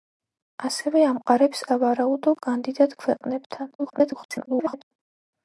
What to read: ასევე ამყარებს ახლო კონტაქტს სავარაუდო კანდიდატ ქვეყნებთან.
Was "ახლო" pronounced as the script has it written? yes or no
no